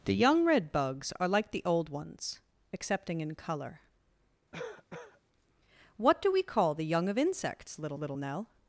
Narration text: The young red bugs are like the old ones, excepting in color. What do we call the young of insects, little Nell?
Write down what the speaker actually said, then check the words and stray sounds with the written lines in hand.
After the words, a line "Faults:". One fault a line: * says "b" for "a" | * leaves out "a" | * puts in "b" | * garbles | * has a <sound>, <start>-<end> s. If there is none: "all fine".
The young red bugs are like the old ones, excepting in color. What do we call the young of insects, little little Nell?
Faults:
* has a cough, 4.5-5.2 s
* puts in "little"